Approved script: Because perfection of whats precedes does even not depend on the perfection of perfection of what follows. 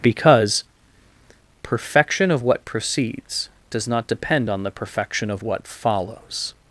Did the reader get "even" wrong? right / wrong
wrong